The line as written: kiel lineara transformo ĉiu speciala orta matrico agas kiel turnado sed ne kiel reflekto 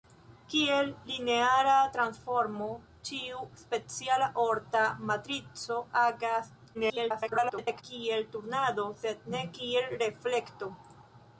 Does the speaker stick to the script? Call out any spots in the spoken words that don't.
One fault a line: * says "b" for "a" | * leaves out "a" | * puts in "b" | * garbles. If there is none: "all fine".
* garbles